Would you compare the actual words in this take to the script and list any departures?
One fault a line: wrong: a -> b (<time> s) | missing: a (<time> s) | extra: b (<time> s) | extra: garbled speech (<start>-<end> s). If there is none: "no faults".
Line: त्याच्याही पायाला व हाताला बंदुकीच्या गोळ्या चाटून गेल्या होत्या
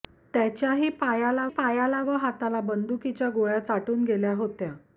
extra: पायाला (1.5 s)